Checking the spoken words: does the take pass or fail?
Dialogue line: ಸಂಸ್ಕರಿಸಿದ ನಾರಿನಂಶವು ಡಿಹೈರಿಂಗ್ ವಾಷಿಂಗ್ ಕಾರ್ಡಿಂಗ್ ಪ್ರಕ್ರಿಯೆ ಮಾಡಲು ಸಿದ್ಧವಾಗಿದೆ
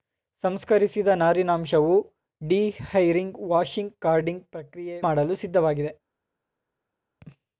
pass